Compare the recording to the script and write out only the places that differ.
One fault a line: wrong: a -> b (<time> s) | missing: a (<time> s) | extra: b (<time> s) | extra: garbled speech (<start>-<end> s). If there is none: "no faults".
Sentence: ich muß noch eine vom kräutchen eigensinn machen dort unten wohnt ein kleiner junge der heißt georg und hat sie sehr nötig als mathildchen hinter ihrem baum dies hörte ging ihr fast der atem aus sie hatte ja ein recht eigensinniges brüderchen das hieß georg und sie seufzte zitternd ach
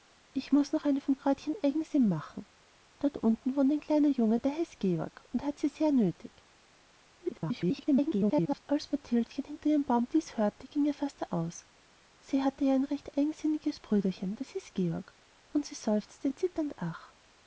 extra: garbled speech (7.2-8.6 s)
missing: atem (11.3 s)